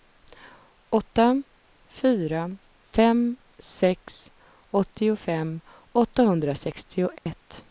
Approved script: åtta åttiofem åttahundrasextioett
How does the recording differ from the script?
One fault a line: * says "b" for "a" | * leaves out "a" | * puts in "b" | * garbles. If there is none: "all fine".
* puts in "fyra fem sex"